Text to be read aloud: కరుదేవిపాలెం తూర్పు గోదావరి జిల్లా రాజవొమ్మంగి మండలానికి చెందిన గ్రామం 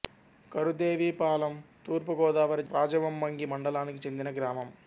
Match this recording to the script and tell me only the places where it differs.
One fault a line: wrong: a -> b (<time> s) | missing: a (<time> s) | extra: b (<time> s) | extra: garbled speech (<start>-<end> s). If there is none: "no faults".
missing: జిల్లా (2.6 s)